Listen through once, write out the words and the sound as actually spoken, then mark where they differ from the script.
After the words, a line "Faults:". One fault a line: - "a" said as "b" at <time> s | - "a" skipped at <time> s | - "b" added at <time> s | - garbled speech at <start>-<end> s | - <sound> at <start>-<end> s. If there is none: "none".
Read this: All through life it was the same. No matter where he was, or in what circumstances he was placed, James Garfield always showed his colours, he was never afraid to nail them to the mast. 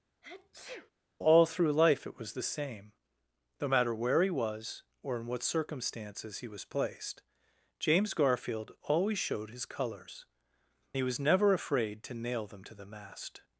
All through life it was the same. No matter where he was, or in what circumstances he was placed, James Garfield always showed his colours, he was never afraid to nail them to the mast.
Faults:
- sneeze at 0.2-0.9 s